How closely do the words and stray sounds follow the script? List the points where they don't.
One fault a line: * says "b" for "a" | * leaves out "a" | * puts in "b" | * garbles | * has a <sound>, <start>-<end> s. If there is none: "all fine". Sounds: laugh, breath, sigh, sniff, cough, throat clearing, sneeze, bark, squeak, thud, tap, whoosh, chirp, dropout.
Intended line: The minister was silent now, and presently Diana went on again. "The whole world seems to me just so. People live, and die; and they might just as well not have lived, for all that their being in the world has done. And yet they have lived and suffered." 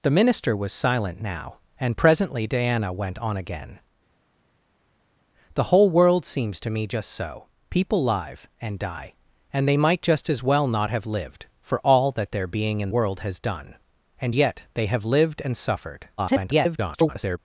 * leaves out "the"
* garbles